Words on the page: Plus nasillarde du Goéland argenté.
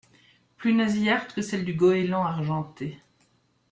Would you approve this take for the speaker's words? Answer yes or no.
no